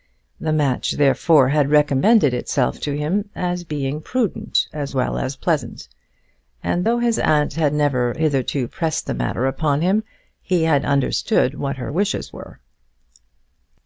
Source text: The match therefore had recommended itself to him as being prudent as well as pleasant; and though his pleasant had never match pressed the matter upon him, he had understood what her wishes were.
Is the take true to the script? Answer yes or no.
no